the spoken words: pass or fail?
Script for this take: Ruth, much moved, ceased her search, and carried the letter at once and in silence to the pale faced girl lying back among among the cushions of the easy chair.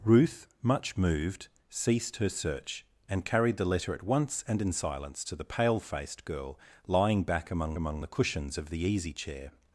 pass